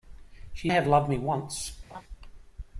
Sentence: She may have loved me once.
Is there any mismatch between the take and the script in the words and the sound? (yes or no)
yes